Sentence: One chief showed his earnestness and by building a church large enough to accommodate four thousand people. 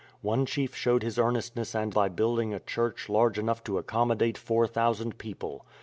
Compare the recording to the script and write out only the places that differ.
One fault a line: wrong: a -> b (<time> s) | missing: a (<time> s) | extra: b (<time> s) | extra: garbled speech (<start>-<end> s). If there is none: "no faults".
no faults